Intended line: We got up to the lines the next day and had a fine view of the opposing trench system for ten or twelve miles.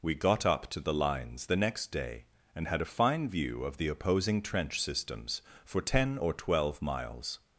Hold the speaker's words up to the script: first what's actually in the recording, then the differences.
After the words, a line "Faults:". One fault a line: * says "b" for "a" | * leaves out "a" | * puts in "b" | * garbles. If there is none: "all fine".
We got up to the lines the next day and had a fine view of the opposing trench systems for ten or twelve miles.
Faults:
* says "systems" for "system"